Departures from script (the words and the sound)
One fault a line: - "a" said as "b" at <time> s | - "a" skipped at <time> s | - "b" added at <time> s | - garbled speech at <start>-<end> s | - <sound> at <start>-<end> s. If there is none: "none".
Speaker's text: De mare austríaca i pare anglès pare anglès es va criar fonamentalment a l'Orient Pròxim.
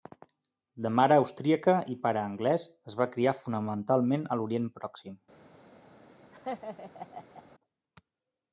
- "pare anglès" skipped at 2.6 s
- laugh at 6.3-7.4 s